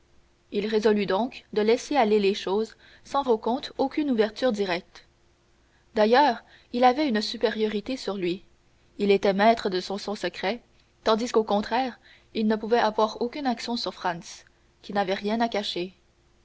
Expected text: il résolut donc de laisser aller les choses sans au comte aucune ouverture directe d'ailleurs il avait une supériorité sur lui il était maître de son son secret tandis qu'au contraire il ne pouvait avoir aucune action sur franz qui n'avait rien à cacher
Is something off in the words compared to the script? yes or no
no